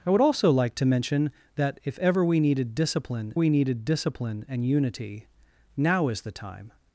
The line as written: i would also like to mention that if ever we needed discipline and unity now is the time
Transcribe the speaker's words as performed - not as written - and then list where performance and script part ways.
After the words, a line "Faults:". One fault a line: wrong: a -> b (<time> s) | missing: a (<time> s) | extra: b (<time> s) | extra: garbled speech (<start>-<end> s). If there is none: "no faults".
i would also like to mention that if ever we needed discipline we needed discipline and unity now is the time
Faults:
extra: we needed discipline (3.3 s)